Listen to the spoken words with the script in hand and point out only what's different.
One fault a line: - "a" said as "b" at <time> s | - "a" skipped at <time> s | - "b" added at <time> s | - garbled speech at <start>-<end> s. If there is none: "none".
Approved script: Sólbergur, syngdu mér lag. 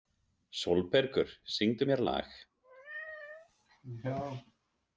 none